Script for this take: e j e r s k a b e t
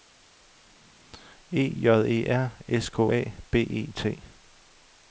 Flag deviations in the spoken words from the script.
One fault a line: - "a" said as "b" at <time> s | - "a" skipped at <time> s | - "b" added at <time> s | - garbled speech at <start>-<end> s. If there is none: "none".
none